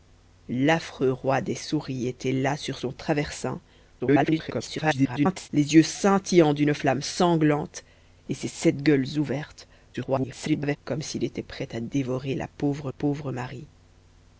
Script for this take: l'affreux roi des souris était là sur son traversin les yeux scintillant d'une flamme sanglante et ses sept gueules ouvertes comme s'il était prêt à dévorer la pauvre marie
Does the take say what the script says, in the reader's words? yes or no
no